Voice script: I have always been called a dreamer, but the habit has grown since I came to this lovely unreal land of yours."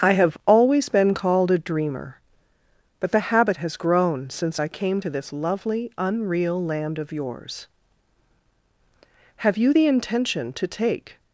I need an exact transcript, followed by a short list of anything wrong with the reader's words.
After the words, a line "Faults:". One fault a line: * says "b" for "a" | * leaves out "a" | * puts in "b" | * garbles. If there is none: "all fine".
I have always been called a dreamer, but the habit has grown since I came to this lovely unreal land of yours." "Have you the intention to take
Faults:
* puts in "Have you the intention to take"